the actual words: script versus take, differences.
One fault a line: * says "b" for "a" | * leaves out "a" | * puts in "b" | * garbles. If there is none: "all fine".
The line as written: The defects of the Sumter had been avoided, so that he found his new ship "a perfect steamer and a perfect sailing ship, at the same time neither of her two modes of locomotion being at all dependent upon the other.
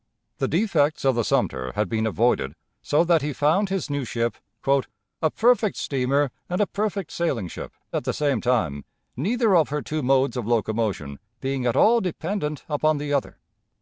all fine